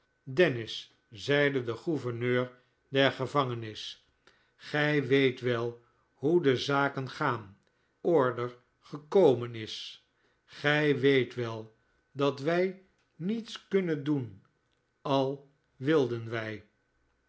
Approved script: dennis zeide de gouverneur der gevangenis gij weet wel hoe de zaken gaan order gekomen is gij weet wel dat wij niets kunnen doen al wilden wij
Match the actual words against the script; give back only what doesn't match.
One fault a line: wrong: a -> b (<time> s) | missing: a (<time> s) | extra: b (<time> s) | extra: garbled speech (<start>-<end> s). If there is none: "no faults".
no faults